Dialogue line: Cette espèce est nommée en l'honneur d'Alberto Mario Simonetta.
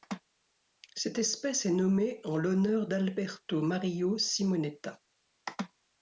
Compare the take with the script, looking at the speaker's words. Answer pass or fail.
pass